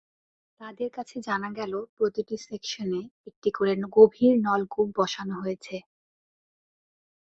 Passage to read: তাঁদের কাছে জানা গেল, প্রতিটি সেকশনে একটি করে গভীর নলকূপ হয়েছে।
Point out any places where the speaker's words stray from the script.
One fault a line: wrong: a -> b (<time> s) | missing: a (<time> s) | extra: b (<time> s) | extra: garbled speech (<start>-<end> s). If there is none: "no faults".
extra: বসানো (5.0 s)